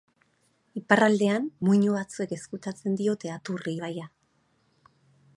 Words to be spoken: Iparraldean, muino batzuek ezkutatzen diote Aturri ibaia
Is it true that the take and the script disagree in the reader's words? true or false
false